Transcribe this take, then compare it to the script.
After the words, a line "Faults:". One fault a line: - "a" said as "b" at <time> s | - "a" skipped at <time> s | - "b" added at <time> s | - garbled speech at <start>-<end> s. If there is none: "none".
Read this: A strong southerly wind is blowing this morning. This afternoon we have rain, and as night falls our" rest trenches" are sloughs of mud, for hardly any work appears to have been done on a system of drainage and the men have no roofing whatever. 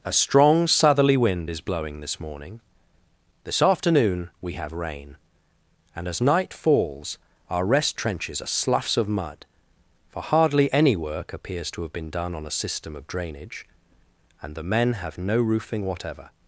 A strong southerly wind is blowing this morning. This afternoon we have rain, and as night falls our" rest trenches" are sloughs of mud, for hardly any work appears to have been done on a system of drainage and the men have no roofing whatever.
Faults:
none